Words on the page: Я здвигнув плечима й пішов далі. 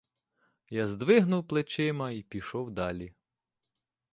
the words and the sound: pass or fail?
pass